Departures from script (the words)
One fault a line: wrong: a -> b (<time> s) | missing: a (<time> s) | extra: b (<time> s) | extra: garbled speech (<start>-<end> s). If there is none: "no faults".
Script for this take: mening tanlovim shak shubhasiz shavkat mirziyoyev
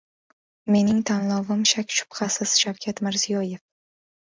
no faults